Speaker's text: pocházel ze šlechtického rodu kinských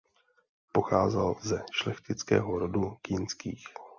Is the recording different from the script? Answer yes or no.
no